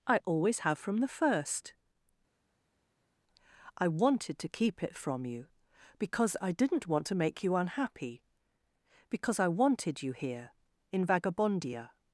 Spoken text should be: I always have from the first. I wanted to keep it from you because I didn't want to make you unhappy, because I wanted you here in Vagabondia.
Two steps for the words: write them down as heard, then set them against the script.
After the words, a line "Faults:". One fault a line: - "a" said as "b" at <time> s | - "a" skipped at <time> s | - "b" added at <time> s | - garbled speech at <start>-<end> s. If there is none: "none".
I always have from the first. I wanted to keep it from you because I didn't want to make you unhappy, because I wanted you here in Vagabondia.
Faults:
none